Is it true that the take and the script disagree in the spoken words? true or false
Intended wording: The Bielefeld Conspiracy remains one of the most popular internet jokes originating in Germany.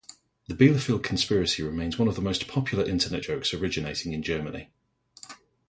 false